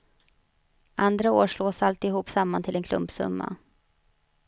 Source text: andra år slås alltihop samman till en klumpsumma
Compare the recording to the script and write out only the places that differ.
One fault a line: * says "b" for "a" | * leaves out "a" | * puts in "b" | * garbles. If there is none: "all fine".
all fine